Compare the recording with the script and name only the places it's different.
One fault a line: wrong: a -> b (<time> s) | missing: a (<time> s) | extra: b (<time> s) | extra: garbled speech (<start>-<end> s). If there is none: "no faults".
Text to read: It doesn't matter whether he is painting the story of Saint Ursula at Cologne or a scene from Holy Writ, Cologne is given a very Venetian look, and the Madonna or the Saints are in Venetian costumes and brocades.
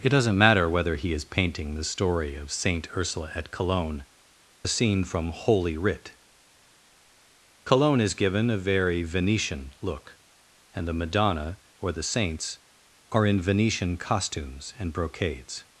missing: or (4.0 s)